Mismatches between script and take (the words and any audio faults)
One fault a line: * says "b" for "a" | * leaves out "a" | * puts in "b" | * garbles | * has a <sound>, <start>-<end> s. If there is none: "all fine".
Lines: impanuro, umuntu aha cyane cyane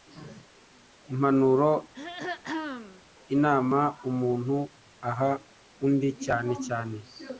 * has a throat clearing, 1.9-3.0 s
* puts in "inama"
* puts in "undi"